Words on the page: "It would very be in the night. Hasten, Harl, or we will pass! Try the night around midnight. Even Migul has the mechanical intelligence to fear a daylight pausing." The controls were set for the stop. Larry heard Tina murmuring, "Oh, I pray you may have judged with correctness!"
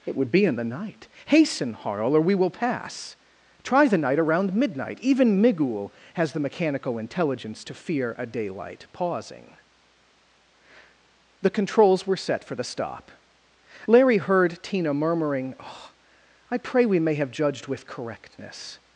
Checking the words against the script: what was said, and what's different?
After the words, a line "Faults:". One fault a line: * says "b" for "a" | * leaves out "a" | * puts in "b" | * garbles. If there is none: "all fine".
"It would be in the night. Hasten, Harl, or we will pass! Try the night around midnight. Even Migul has the mechanical intelligence to fear a daylight pausing." The controls were set for the stop. Larry heard Tina murmuring, "Oh, I pray we may have judged with correctness!"
Faults:
* leaves out "very"
* says "we" for "you"